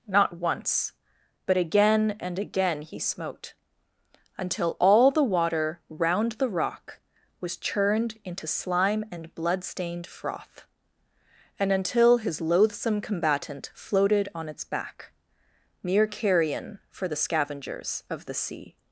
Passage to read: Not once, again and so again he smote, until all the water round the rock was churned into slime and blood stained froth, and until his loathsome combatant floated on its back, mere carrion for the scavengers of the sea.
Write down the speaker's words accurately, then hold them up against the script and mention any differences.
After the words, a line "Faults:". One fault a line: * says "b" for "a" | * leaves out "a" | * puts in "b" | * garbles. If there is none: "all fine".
Not once, but again and again he smote, until all the water round the rock was churned into slime and blood stained froth, and until his loathsome combatant floated on its back, mere carrion for the scavengers of the sea.
Faults:
* puts in "but"
* leaves out "so"